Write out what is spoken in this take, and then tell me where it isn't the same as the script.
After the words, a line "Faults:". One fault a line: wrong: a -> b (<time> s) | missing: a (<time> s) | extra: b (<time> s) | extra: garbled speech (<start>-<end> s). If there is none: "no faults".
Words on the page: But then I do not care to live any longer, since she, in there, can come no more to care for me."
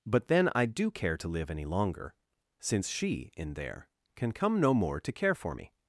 But then I do care to live any longer, since she, in there, can come no more to care for me."
Faults:
missing: not (0.9 s)